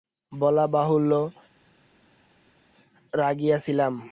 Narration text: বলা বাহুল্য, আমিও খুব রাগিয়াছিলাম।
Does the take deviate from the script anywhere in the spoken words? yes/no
yes